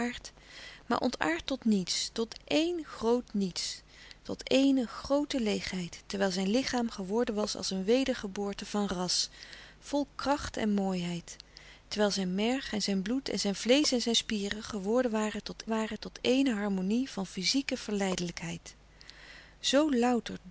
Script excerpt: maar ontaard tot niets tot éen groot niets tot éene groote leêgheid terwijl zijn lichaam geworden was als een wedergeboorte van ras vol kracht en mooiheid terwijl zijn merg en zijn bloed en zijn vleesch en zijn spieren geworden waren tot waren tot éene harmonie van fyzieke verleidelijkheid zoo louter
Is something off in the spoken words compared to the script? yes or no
no